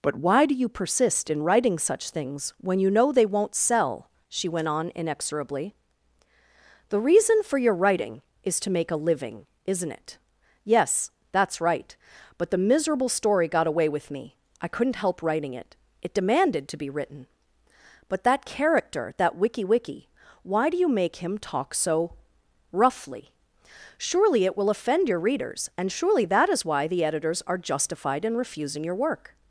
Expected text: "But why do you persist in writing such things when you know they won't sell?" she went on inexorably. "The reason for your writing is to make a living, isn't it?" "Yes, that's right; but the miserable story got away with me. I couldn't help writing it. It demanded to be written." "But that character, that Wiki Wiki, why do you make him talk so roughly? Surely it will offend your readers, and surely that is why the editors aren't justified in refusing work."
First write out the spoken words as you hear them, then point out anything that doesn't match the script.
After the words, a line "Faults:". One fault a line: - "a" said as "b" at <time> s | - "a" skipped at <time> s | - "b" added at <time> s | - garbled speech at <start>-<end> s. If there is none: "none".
"But why do you persist in writing such things when you know they won't sell?" she went on inexorably. "The reason for your writing is to make a living, isn't it?" "Yes, that's right; but the miserable story got away with me. I couldn't help writing it. It demanded to be written." "But that character, that Wiki Wiki, why do you make him talk so roughly? Surely it will offend your readers, and surely that is why the editors are justified in refusing your work."
Faults:
- "aren't" said as "are" at 27.4 s
- "your" added at 28.8 s